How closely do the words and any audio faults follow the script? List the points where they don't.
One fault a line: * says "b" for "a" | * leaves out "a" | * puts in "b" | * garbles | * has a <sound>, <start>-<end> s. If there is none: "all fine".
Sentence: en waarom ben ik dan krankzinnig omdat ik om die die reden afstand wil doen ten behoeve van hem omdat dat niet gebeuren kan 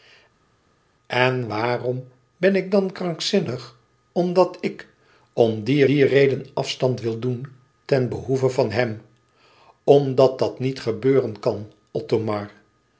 all fine